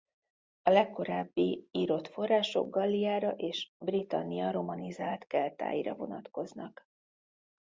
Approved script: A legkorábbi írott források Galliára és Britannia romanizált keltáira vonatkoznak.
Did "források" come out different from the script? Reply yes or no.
no